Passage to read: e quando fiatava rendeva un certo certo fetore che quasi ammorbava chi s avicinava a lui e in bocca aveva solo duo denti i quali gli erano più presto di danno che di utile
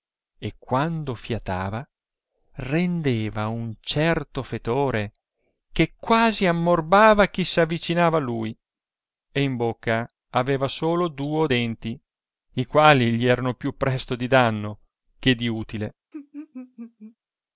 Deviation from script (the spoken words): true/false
true